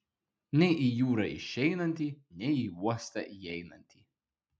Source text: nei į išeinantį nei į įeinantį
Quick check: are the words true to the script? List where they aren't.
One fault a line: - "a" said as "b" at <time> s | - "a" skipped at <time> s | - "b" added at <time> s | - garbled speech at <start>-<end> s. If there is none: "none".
- "jūrą" added at 1.0 s
- "uostą" added at 2.9 s